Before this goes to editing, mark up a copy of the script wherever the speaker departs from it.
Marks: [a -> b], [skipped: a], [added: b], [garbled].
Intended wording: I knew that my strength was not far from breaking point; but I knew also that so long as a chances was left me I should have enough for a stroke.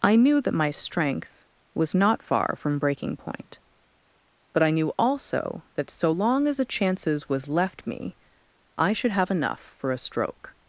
I knew that my strength was not far from breaking point; but I knew also that so long as a chances was left me I should have enough for a stroke.